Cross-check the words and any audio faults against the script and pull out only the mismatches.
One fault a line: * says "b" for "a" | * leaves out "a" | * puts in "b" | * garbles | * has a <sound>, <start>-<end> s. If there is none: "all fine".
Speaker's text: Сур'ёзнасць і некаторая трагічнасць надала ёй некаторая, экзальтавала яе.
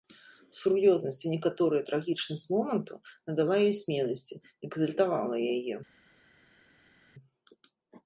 * puts in "моманту"
* says "смеласці" for "некаторая"